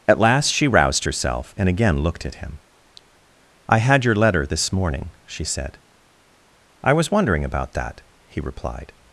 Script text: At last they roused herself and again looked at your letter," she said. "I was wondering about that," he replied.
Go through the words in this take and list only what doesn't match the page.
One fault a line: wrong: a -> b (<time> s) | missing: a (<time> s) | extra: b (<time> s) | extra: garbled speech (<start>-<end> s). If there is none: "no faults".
wrong: they -> she (0.5 s)
extra: him I had (2.3 s)
extra: this morning (4.4 s)